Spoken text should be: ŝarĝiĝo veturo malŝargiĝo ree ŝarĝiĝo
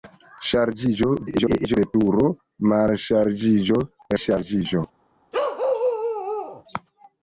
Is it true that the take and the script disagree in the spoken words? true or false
true